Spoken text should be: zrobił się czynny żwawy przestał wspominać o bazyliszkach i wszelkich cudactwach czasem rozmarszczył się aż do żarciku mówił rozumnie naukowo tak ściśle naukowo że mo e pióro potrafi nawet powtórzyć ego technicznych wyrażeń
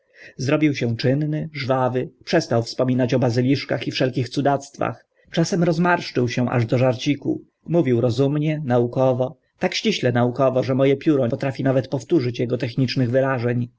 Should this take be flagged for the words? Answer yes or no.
no